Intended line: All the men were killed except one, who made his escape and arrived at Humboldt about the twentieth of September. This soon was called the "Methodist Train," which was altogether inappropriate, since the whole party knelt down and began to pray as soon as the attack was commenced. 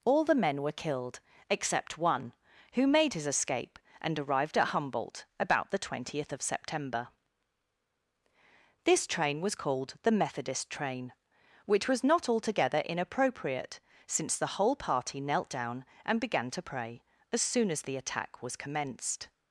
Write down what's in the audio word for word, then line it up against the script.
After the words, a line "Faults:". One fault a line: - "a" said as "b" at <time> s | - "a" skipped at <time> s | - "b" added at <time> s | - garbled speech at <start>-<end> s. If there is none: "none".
All the men were killed except one, who made his escape and arrived at Humboldt about the twentieth of September. This train was called the "Methodist Train," which was not altogether inappropriate, since the whole party knelt down and began to pray as soon as the attack was commenced.
Faults:
- "soon" said as "train" at 9.1 s
- "not" added at 12.0 s